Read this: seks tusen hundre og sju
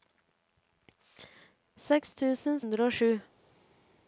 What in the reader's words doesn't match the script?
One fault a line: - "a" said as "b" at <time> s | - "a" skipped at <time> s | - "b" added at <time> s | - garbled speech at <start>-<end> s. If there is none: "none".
none